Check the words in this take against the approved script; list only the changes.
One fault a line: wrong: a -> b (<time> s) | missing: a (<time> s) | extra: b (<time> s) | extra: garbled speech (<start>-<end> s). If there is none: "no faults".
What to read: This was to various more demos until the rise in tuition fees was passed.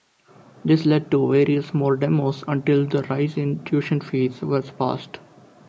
wrong: was -> led (0.9 s)